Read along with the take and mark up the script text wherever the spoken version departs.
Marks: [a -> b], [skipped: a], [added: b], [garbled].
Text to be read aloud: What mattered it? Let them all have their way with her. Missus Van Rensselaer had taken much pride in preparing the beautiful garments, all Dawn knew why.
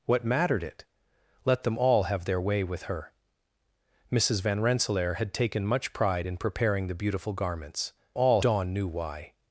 What mattered it? Let them all have their way with her. Missus Van Rensselaer had taken much pride in preparing the beautiful garments, all Dawn knew why.